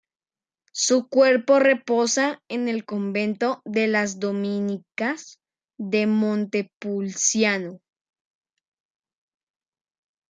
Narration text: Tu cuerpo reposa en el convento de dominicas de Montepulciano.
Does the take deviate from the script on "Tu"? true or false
true